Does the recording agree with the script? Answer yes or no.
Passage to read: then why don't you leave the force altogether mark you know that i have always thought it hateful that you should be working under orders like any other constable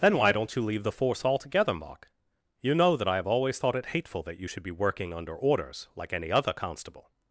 yes